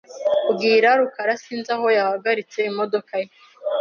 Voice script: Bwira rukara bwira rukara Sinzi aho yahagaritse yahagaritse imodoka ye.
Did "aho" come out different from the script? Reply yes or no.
no